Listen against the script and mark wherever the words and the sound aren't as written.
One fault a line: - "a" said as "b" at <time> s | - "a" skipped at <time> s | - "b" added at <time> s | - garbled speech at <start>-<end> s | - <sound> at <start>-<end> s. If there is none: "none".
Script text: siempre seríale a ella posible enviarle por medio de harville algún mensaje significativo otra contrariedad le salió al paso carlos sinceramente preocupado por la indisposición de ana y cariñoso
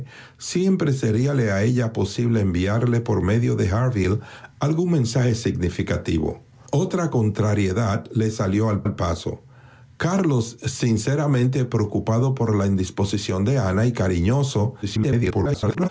- "al" added at 8.8 s
- garbled speech at 14.8-15.9 s